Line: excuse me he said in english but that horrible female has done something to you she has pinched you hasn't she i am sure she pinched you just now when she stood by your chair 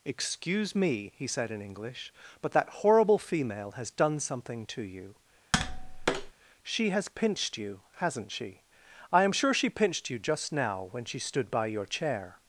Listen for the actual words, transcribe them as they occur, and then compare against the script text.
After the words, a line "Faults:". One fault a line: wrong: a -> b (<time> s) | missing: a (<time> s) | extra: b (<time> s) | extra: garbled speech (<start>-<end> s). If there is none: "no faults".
excuse me he said in english but that horrible female has done something to you she has pinched you hasn't she i am sure she pinched you just now when she stood by your chair
Faults:
no faults